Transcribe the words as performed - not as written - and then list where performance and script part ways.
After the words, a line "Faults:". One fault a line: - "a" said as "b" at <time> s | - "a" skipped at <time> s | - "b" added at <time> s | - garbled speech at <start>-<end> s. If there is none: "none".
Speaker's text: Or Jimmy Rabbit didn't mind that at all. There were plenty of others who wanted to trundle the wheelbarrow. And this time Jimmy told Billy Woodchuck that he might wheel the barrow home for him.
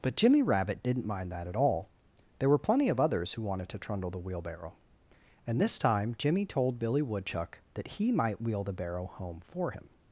But Jimmy Rabbit didn't mind that at all. There were plenty of others who wanted to trundle the wheelbarrow. And this time Jimmy told Billy Woodchuck that he might wheel the barrow home for him.
Faults:
- "Or" said as "But" at 0.0 s